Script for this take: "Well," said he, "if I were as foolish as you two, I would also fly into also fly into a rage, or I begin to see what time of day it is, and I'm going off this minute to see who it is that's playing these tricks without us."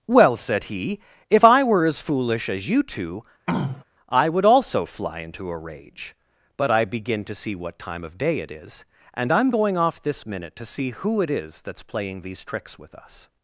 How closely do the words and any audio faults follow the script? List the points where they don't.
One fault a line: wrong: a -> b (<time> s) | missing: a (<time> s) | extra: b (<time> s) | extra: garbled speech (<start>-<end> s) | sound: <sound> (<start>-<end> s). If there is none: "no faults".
sound: throat clearing (3.5-3.8 s)
missing: also fly into (5.5 s)
wrong: or -> but (6.6 s)
wrong: without -> with (12.8 s)